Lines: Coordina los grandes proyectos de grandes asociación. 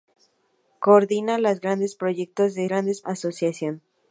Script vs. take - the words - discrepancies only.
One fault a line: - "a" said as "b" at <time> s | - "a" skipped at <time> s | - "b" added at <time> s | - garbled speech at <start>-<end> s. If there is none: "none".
none